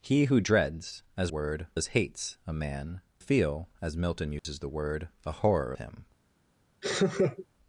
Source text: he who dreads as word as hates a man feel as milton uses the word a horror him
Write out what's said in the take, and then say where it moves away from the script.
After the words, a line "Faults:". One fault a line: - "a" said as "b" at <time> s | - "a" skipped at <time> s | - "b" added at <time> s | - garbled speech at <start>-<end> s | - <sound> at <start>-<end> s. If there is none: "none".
he who dreads as word as hates a man feel as milton uses the word a horror him
Faults:
- dropout at 4.4-4.4 s
- laugh at 6.8-7.5 s